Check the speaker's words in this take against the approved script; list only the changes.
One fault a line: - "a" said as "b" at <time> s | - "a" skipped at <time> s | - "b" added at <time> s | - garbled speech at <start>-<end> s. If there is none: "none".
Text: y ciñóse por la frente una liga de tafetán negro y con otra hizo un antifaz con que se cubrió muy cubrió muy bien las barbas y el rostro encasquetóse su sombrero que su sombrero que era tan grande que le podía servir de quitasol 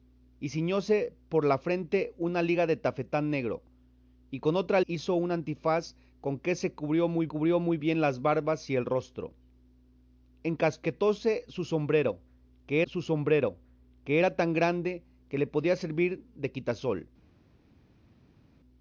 none